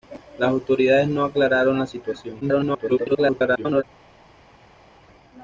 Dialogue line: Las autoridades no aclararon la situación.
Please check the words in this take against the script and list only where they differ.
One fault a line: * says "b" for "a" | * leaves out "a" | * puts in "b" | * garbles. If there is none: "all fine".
* garbles